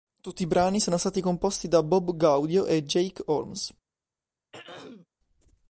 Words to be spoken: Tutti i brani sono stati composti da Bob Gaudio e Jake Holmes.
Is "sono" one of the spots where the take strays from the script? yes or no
no